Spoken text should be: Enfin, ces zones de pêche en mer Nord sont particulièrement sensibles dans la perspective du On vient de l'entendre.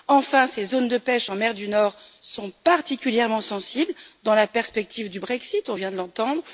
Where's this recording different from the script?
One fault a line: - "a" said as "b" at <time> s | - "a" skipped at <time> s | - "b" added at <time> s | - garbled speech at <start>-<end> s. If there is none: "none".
- "du" added at 1.5 s
- "Brexit" added at 5.2 s